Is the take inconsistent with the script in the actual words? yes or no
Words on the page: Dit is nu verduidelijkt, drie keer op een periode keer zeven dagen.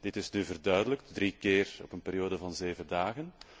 yes